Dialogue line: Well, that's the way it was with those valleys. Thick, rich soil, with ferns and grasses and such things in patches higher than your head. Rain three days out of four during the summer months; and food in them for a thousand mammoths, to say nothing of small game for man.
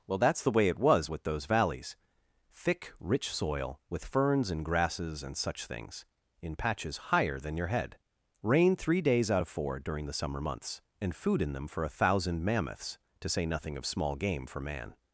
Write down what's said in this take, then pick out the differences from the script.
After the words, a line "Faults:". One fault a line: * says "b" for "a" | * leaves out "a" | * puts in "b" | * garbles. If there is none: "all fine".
Well, that's the way it was with those valleys. Thick, rich soil, with ferns and grasses and such things in patches higher than your head. Rain three days out of four during the summer months; and food in them for a thousand mammoths, to say nothing of small game for man.
Faults:
all fine